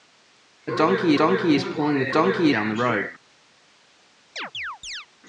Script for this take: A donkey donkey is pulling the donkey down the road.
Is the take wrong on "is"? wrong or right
right